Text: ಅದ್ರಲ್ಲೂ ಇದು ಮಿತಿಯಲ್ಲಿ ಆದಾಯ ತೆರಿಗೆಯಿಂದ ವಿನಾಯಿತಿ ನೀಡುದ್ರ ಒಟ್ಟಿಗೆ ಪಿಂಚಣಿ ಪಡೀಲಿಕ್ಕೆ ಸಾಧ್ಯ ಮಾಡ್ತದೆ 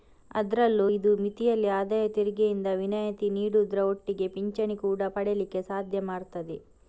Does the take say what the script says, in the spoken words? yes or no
no